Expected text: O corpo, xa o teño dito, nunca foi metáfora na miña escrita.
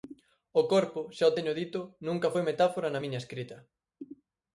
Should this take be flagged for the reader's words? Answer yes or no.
no